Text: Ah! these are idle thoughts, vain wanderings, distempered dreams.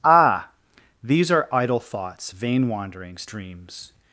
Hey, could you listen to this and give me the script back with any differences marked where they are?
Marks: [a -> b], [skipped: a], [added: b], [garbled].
Ah! these are idle thoughts, vain wanderings, [skipped: distempered] dreams.